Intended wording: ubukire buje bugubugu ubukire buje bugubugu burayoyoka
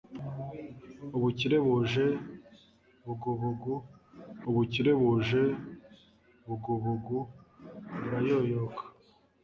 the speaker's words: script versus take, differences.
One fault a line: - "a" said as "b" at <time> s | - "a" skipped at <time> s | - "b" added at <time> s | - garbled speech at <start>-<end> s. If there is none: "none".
none